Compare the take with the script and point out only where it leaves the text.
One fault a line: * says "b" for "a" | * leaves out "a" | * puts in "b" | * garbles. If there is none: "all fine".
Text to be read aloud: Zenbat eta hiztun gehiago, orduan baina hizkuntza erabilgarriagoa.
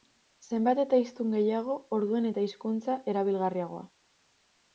* says "eta" for "baina"